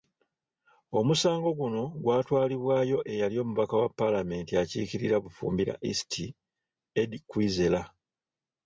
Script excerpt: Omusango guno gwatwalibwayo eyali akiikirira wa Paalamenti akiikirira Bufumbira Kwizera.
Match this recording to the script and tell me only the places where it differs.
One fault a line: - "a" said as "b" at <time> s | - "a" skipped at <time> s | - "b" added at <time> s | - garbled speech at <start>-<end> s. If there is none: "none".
- "akiikirira" said as "omubaka" at 3.4 s
- "East Eddie" added at 5.9 s